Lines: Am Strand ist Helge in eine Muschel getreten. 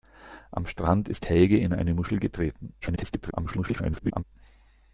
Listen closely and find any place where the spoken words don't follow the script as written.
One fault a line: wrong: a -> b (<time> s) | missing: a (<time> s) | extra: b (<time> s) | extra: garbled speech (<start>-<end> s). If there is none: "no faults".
extra: garbled speech (2.8-4.2 s)